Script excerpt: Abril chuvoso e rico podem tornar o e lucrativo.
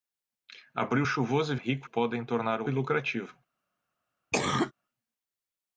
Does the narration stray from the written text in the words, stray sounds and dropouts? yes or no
yes